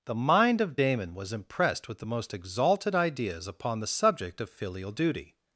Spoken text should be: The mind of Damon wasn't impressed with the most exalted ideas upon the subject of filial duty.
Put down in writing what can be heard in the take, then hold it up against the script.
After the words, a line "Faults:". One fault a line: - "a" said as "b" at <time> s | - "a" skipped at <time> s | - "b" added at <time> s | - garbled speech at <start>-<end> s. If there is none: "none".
The mind of Damon was impressed with the most exalted ideas upon the subject of filial duty.
Faults:
- "wasn't" said as "was" at 1.1 s